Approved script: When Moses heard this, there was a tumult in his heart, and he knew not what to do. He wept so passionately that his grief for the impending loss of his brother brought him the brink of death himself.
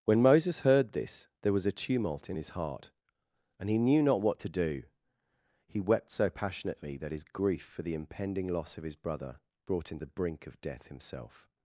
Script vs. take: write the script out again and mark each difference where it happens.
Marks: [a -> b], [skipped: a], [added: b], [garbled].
When Moses heard this, there was a tumult in his heart, and he knew not what to do. He wept so passionately that his grief for the impending loss of his brother brought him the brink of death himself.